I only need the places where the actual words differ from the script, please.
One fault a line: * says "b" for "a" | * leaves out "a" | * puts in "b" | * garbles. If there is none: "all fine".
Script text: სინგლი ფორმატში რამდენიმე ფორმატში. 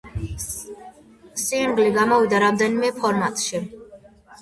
* says "გამოვიდა" for "ფორმატში"